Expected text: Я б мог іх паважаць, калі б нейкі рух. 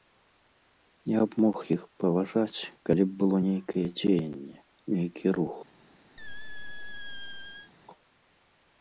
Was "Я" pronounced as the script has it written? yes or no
yes